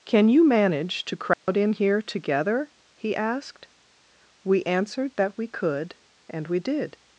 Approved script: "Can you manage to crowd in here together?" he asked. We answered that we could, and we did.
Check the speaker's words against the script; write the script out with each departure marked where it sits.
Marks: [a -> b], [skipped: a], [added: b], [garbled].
"Can you manage to crowd in here together?" he asked. We answered that we could, and we did.